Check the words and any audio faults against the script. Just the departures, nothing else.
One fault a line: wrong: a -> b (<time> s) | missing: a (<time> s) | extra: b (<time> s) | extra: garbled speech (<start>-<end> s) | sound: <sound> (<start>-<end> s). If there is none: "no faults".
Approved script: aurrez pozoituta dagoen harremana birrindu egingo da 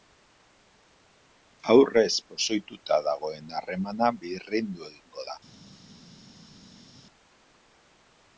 no faults